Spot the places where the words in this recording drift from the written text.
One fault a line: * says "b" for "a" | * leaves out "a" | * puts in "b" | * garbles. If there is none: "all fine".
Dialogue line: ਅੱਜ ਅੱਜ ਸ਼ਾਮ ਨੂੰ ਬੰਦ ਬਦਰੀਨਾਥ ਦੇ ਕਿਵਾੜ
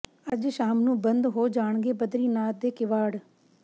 * leaves out "ਅੱਜ"
* puts in "ਹੋ ਜਾਣਗੇ"